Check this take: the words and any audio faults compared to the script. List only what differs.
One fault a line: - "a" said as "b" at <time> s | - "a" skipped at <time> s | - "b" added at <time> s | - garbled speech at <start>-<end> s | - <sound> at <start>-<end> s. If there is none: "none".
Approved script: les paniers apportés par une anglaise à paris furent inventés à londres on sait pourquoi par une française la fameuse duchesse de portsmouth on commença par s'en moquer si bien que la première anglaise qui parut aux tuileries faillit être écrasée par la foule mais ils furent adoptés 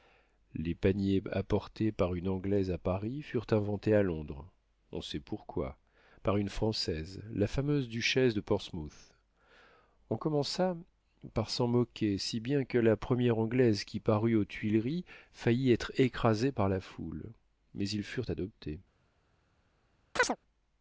- chirp at 20.2-20.4 s